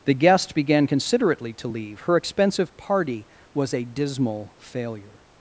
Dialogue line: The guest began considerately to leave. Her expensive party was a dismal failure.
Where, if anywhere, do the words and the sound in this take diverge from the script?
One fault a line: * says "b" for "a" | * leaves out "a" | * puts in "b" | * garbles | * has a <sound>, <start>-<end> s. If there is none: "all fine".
all fine